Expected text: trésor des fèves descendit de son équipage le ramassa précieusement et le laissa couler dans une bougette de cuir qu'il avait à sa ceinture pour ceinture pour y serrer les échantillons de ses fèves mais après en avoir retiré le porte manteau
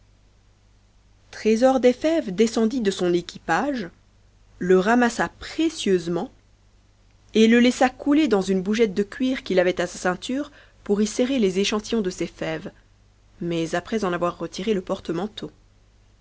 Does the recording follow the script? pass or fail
fail